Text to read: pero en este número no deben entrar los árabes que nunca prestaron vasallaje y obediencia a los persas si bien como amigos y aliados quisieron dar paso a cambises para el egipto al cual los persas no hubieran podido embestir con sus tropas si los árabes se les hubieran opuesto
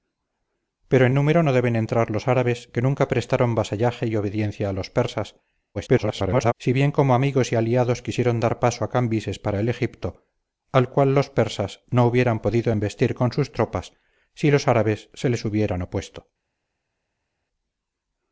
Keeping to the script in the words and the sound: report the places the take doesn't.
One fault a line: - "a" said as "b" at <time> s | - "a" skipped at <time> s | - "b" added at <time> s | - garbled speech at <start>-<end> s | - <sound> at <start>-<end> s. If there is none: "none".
- "este" skipped at 1.1 s
- garbled speech at 5.7-6.5 s